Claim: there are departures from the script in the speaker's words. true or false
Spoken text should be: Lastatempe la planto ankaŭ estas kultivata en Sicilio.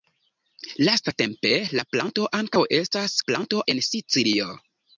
true